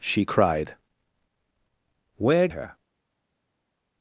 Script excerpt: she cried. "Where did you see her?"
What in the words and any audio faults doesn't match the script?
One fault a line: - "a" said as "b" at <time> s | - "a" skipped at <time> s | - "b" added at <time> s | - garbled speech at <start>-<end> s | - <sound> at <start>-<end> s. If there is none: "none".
- "did you see" skipped at 2.5 s